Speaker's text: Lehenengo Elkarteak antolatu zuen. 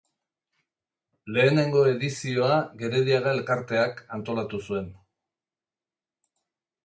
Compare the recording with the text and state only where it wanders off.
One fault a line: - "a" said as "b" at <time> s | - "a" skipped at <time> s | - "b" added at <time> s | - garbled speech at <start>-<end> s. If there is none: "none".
- "edizioa Gerediaga" added at 1.9 s